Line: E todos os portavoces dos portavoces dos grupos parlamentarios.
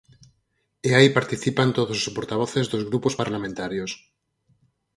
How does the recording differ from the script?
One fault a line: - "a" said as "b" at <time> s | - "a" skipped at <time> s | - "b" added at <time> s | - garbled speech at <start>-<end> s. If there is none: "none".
- "aí participan" added at 1.0 s
- "portavoces dos" skipped at 2.8 s